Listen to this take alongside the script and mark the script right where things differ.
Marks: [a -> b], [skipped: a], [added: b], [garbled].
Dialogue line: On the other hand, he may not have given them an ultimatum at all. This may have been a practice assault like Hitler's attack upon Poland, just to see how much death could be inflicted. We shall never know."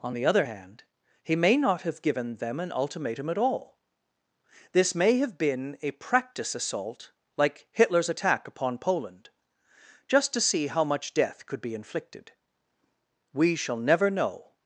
On the other hand, he may not have given them an ultimatum at all. This may have been a practice assault like Hitler's attack upon Poland, just to see how much death could be inflicted. We shall never know."